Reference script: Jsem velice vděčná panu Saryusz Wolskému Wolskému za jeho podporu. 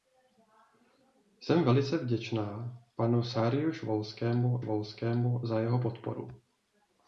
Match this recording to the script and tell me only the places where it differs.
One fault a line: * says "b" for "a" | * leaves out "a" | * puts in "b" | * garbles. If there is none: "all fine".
all fine